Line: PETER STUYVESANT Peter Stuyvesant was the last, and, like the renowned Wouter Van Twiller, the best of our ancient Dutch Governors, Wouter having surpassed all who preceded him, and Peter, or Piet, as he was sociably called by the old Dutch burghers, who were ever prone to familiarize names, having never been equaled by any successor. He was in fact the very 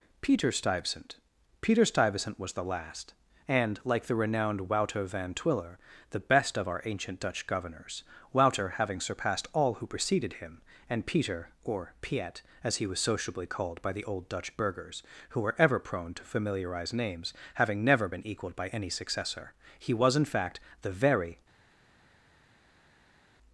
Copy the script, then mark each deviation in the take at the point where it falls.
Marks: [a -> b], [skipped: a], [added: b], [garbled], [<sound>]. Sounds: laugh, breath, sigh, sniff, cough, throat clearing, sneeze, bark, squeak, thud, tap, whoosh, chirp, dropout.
PETER STUYVESANT Peter Stuyvesant was the last, and, like the renowned Wouter Van Twiller, the best of our ancient Dutch Governors, Wouter having surpassed all who preceded him, and Peter, or Piet, as he was sociably called by the old Dutch burghers, who were ever prone to familiarize names, having never been equaled by any successor. He was in fact the very